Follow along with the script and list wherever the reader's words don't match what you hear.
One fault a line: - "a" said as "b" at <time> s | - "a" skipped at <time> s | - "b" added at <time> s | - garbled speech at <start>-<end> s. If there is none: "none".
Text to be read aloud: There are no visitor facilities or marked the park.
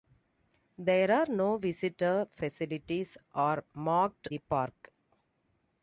none